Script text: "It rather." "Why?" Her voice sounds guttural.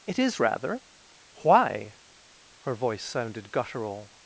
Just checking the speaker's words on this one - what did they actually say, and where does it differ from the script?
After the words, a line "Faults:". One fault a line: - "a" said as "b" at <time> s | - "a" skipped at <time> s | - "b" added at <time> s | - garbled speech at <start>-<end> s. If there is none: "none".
"It is rather." "Why?" Her voice sounded guttural.
Faults:
- "is" added at 0.2 s
- "sounds" said as "sounded" at 3.0 s